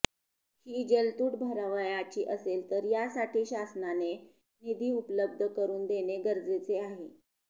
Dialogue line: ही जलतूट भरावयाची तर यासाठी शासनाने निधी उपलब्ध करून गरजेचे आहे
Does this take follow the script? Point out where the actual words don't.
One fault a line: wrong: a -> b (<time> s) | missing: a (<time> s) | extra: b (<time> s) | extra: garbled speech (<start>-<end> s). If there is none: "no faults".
extra: असेल (2.2 s)
extra: देणे (5.9 s)